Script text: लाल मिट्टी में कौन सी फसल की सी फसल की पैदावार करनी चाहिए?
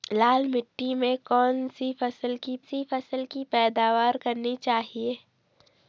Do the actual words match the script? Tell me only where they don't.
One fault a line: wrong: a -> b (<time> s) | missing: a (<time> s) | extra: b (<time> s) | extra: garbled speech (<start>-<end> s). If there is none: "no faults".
no faults